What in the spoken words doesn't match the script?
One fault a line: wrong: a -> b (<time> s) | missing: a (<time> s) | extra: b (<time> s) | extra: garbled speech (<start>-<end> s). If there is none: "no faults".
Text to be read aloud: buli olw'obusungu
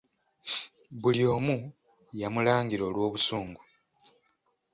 extra: omu yamulangira (1.3 s)